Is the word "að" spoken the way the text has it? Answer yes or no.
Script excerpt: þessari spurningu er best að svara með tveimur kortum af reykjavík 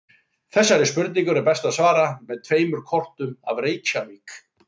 yes